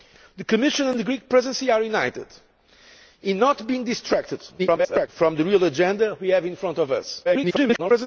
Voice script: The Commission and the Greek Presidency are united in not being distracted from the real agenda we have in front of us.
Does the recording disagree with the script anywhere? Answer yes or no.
yes